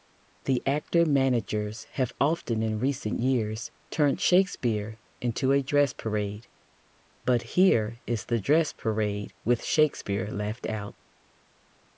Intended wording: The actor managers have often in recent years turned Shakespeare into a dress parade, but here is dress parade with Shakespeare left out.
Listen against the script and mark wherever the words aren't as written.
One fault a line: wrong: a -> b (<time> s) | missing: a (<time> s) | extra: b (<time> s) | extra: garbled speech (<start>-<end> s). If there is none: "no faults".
extra: the (8.3 s)